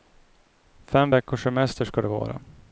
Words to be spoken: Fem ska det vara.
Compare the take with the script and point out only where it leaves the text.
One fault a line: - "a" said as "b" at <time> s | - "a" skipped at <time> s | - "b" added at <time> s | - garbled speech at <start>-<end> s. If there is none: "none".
- "veckors semester" added at 1.1 s